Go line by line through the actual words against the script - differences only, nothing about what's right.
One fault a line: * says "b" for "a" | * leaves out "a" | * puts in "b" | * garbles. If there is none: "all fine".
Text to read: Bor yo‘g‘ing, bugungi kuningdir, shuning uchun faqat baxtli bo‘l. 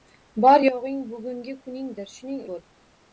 * leaves out "uchun faqat baxtli"